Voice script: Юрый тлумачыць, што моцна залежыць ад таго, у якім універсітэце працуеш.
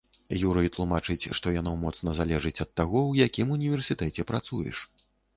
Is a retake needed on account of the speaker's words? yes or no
yes